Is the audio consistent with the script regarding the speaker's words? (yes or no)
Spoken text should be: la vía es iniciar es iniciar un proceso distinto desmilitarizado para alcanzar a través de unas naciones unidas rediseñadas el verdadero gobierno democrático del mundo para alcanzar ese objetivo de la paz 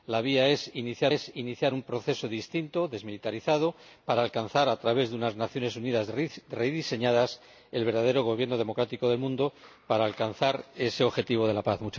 yes